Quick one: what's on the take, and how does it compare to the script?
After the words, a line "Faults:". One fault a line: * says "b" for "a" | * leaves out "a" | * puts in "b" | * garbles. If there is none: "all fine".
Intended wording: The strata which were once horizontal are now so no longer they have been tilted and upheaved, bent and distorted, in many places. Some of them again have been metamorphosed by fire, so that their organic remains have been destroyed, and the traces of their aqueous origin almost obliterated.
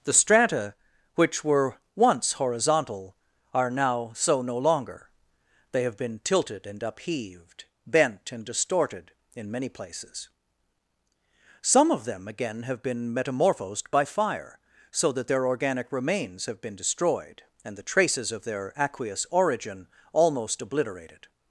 The strata which were once horizontal are now so no longer they have been tilted and upheaved, bent and distorted, in many places. Some of them again have been metamorphosed by fire, so that their organic remains have been destroyed, and the traces of their aqueous origin almost obliterated.
Faults:
all fine